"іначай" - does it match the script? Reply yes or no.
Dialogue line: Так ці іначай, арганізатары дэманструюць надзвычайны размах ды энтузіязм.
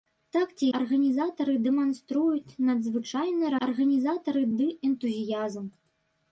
no